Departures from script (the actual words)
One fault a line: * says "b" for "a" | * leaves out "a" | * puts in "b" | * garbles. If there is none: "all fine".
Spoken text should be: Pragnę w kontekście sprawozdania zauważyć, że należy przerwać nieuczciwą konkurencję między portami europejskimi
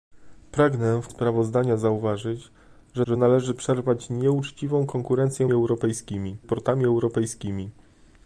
* leaves out "kontekście"
* puts in "że"
* says "europejskimi" for "między"